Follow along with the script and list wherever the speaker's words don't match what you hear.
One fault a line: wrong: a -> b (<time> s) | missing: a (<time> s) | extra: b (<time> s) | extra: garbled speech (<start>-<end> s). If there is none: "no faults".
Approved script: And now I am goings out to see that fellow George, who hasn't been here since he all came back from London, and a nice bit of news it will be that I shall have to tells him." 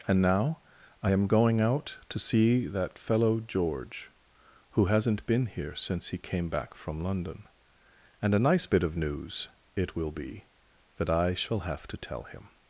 wrong: goings -> going (1.3 s)
missing: all (6.2 s)
wrong: tells -> tell (12.0 s)